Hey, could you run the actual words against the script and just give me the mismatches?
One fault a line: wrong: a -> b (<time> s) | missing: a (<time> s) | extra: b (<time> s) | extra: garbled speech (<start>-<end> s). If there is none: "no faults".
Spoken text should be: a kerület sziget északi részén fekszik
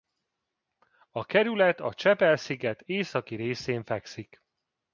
extra: a csepel (1.8 s)